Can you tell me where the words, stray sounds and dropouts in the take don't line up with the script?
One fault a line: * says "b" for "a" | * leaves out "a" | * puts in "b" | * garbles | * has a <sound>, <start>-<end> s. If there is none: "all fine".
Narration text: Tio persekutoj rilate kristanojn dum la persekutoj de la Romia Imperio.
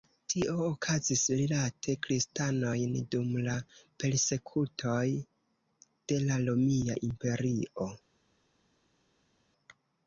* says "okazis" for "persekutoj"